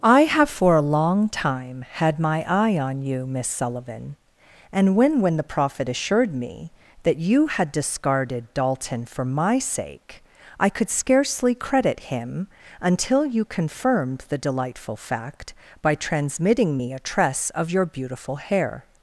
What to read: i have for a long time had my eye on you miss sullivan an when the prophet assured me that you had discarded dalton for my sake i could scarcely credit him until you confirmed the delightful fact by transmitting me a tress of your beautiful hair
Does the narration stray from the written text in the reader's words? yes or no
yes